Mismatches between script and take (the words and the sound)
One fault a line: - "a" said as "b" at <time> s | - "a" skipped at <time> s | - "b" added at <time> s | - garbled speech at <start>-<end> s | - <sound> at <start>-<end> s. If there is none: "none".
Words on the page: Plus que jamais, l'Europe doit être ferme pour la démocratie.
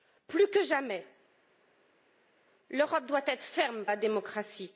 - "pour" skipped at 3.8 s